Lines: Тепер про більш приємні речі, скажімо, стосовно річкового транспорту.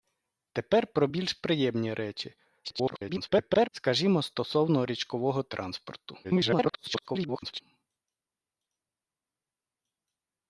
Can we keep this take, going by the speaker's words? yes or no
no